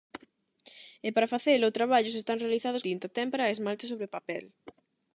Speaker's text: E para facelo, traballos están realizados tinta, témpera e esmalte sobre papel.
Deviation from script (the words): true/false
false